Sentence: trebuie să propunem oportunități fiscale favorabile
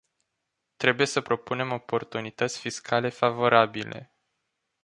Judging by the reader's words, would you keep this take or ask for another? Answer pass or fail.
pass